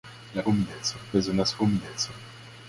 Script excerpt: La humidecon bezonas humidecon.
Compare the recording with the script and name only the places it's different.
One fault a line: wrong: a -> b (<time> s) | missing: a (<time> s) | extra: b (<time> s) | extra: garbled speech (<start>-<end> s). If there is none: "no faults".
no faults